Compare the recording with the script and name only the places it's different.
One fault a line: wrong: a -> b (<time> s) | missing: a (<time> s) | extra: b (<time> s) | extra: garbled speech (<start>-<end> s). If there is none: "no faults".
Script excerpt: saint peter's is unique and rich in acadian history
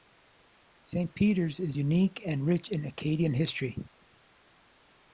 no faults